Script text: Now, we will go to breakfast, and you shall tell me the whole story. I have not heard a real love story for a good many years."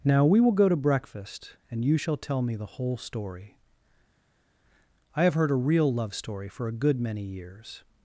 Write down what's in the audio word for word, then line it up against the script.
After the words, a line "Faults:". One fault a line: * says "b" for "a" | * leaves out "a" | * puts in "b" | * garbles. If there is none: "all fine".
Now, we will go to breakfast, and you shall tell me the whole story. I have heard a real love story for a good many years."
Faults:
* leaves out "not"